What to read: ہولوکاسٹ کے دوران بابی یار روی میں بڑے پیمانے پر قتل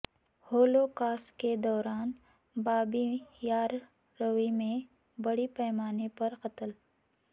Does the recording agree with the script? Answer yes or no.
yes